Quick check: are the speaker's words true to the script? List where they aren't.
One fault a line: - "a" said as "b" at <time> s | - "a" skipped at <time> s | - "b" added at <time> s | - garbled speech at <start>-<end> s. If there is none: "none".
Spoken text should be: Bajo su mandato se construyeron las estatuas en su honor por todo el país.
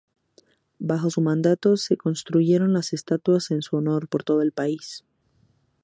none